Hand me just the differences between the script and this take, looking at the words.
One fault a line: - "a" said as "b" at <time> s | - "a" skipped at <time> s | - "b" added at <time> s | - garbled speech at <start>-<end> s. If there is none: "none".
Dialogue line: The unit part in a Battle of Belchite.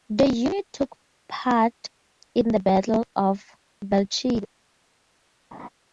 - "took" added at 0.7 s
- "a" said as "the" at 2.5 s